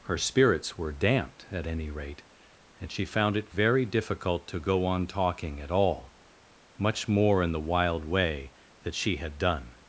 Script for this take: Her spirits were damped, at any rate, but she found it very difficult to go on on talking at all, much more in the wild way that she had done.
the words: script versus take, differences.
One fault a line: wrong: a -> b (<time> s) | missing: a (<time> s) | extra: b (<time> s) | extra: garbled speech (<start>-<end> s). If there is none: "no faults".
wrong: but -> and (2.8 s)
missing: on (5.1 s)